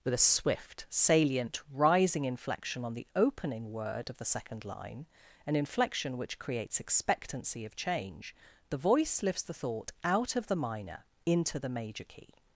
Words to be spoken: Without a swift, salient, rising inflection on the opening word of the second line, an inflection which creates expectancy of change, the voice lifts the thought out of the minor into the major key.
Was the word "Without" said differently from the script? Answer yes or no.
yes